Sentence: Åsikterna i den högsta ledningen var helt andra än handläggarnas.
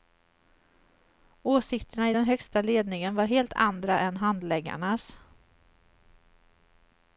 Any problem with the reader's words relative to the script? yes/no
no